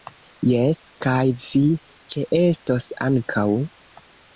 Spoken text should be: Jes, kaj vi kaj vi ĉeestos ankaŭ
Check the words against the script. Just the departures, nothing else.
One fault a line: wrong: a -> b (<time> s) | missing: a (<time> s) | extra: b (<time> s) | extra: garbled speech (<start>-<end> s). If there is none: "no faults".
missing: kaj vi (1.6 s)